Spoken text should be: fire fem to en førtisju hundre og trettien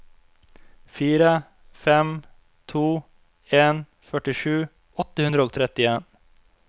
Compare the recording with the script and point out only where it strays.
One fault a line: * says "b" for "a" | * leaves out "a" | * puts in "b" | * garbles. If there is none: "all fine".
* puts in "åtte"